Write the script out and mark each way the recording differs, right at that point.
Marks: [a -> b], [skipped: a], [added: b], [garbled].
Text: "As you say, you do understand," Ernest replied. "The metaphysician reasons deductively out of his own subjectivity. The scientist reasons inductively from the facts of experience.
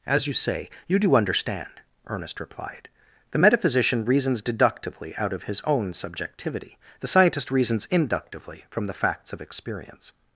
"As you say, you do understand," Ernest replied. "The metaphysician reasons deductively out of his own subjectivity. The scientist reasons inductively from the facts of experience.